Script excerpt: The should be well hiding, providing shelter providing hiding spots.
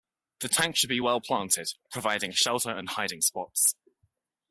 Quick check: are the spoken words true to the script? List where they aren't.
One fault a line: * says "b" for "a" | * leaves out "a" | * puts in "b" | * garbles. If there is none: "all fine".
* puts in "tank"
* says "planted" for "hiding"
* says "and" for "providing"